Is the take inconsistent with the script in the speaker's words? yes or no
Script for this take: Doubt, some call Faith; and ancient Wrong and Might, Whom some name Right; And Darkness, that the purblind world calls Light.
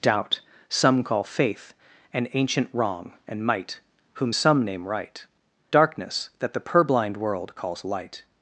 yes